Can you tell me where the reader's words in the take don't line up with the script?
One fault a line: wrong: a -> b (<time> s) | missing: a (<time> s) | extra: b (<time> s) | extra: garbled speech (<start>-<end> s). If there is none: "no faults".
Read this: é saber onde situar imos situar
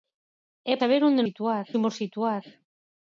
no faults